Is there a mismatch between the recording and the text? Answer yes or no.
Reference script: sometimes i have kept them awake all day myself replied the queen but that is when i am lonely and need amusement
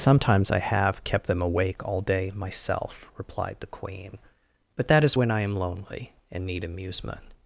no